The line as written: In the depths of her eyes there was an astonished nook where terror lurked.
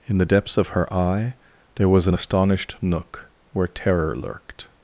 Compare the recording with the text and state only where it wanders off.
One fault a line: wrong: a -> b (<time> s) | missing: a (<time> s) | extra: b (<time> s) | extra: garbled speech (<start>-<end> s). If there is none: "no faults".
wrong: eyes -> eye (0.9 s)